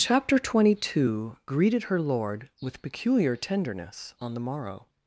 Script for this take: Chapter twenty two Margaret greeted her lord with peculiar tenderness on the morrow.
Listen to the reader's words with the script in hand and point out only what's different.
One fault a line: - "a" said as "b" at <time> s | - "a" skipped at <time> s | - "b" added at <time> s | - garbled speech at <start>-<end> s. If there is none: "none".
- "Margaret" skipped at 1.4 s